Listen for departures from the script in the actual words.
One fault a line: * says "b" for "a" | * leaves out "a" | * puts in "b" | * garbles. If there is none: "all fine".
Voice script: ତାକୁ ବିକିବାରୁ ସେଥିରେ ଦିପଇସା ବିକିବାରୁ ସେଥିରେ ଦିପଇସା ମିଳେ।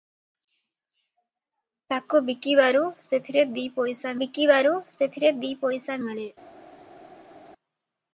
all fine